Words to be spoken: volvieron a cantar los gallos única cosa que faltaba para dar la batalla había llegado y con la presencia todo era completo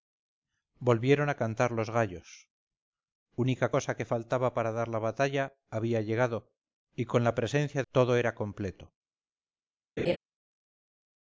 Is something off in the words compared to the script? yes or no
no